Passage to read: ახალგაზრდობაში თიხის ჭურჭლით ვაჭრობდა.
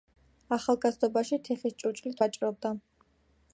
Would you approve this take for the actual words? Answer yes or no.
yes